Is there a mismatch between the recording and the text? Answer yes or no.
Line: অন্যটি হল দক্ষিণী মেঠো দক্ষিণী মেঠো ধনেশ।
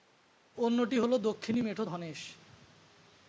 yes